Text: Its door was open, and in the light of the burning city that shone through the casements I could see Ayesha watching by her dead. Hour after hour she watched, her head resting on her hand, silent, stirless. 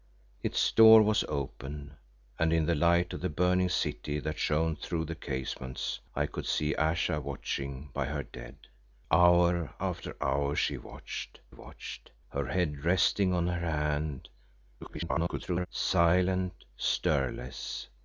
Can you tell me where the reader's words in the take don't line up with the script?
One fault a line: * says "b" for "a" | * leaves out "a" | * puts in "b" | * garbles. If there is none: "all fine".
* puts in "watched"
* garbles